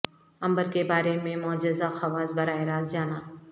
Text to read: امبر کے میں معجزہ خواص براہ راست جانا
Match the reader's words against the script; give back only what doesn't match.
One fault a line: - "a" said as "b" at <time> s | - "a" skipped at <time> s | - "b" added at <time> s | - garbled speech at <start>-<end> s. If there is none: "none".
- "بارے" added at 0.8 s